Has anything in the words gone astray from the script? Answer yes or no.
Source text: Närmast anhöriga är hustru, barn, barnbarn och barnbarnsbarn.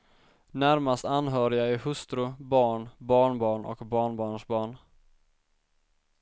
no